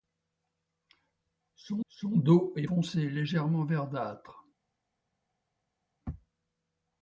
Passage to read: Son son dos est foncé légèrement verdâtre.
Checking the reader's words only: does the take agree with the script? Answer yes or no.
yes